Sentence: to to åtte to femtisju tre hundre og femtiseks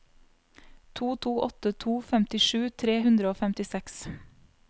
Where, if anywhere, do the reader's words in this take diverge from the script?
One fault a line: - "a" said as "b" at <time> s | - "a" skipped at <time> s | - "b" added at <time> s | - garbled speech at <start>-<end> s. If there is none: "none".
none